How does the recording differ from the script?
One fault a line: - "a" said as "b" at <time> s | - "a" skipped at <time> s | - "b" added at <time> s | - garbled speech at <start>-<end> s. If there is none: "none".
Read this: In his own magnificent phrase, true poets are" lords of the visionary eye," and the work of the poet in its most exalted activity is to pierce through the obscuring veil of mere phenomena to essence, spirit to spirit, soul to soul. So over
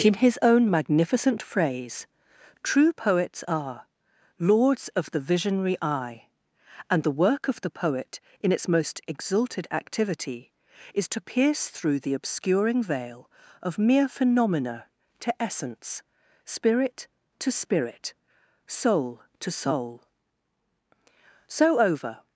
none